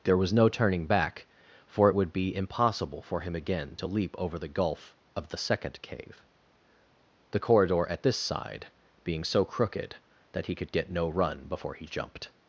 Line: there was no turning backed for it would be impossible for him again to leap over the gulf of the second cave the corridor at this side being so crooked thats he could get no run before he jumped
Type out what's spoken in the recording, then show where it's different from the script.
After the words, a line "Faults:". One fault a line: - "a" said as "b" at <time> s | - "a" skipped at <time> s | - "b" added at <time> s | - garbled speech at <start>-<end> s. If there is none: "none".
there was no turning back for it would be impossible for him again to leap over the gulf of the second cave the corridor at this side being so crooked that he could get no run before he jumped
Faults:
- "backed" said as "back" at 0.9 s
- "thats" said as "that" at 10.3 s